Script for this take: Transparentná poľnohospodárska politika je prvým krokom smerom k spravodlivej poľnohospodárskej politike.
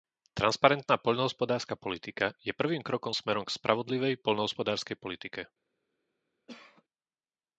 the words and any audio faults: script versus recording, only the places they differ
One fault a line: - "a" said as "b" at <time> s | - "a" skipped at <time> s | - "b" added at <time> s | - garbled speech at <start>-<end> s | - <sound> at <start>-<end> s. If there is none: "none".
- cough at 6.5-6.8 s